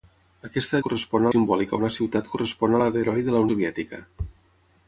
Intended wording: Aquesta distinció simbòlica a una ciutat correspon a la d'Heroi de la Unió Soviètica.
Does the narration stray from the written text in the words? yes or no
yes